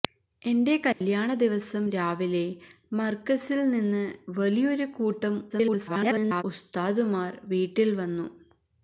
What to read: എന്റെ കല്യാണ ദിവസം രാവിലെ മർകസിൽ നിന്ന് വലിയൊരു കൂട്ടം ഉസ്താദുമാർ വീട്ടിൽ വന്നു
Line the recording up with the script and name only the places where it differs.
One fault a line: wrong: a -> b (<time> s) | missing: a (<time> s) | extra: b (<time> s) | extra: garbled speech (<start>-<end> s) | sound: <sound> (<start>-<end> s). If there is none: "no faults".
sound: dropout (0.9-1.0 s)
extra: garbled speech (5.5-6.4 s)